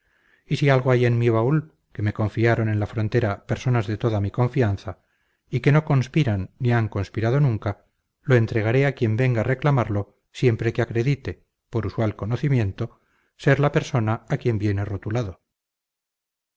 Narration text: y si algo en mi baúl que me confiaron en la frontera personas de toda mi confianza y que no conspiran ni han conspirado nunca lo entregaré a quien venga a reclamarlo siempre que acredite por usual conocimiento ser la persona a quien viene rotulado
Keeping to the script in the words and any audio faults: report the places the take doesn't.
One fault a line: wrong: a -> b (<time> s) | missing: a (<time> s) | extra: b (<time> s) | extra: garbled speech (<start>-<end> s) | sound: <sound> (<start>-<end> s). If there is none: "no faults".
extra: hay (0.9 s)